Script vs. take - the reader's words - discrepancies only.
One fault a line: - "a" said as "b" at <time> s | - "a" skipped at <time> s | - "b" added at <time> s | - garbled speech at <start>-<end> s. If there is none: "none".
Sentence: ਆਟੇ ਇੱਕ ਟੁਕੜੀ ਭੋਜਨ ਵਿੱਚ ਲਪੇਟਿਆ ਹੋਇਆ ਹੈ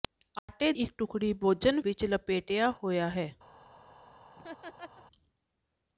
none